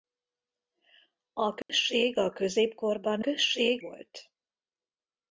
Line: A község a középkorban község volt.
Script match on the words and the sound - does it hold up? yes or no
no